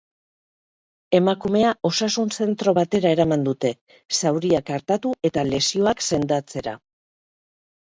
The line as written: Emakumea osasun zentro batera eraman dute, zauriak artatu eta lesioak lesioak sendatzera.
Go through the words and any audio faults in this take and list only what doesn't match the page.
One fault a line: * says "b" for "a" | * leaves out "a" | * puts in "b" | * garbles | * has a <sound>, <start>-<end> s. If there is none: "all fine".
* leaves out "lesioak"